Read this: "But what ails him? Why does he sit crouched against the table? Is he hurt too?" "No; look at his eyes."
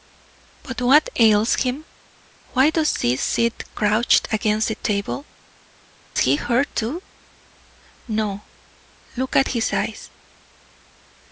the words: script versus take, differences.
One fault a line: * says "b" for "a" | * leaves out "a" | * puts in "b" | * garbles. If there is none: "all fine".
* leaves out "Is"